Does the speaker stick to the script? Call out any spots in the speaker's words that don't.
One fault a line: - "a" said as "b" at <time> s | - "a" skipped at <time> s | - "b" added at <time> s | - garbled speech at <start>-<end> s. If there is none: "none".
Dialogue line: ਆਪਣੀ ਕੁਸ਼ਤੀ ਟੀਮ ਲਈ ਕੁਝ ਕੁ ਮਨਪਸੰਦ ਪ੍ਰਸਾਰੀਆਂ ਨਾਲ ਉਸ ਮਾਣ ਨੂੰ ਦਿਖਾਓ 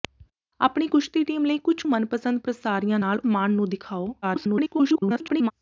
- "ਕੁ" skipped at 1.8 s
- "ਉਸ" skipped at 3.2 s
- garbled speech at 4.2-5.5 s